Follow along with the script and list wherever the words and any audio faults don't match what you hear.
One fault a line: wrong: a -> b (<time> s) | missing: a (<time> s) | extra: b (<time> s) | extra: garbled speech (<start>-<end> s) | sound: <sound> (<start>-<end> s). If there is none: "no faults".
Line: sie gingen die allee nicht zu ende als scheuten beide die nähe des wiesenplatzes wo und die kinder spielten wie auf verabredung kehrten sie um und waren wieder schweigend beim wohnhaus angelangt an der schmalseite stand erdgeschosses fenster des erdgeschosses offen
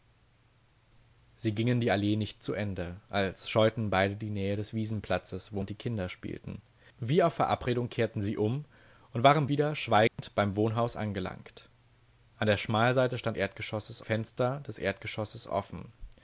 sound: dropout (10.1-10.2 s)